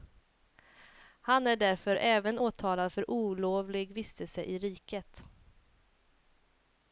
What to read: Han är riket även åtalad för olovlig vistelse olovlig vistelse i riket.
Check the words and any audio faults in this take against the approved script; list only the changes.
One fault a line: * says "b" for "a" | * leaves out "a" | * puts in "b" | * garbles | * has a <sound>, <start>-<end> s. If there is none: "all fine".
* says "därför" for "riket"
* leaves out "olovlig vistelse"